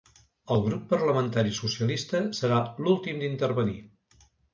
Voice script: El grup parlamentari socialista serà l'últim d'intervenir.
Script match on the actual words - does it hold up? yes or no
yes